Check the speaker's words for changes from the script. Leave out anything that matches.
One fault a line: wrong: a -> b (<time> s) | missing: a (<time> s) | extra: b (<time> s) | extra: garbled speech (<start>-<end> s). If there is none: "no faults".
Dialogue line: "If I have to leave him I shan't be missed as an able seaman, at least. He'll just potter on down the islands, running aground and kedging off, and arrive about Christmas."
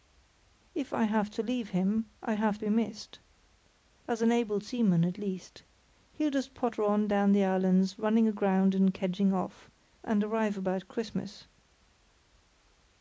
wrong: shan't -> have (2.3 s)